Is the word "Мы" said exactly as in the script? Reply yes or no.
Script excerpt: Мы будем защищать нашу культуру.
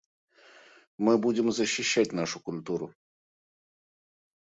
yes